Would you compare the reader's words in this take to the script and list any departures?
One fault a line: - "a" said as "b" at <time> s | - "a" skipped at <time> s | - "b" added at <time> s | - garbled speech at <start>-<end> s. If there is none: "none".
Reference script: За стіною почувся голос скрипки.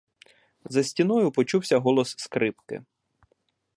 none